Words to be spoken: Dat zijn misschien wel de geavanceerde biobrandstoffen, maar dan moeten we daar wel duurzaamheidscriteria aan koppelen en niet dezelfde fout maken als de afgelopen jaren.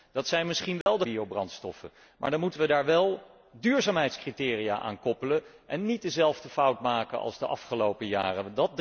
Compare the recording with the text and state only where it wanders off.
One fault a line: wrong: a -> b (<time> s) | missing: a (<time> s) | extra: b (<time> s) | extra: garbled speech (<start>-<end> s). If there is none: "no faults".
missing: geavanceerde (1.1 s)